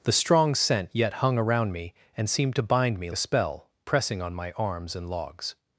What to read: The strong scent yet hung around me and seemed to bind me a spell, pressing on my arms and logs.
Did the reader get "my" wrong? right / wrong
right